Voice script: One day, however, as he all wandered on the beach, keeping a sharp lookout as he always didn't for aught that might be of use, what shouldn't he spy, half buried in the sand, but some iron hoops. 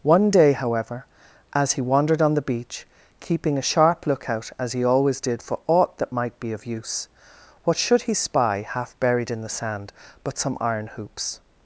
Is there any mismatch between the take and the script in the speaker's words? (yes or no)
yes